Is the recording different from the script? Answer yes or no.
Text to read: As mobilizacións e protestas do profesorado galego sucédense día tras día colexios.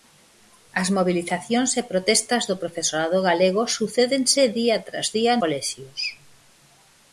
no